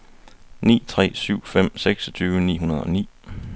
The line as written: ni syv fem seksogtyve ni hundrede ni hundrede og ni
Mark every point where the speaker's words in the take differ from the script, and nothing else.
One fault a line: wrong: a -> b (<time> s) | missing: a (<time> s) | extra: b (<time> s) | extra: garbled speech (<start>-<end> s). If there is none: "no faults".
extra: tre (0.9 s)
missing: ni hundrede (2.8 s)